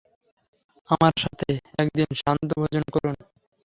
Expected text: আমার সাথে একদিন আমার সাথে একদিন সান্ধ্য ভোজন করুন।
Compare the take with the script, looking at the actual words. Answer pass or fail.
fail